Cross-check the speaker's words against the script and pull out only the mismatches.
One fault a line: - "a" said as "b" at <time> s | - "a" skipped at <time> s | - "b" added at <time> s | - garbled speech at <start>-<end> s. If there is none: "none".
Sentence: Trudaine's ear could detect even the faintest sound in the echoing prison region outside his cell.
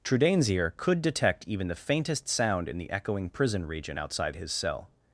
none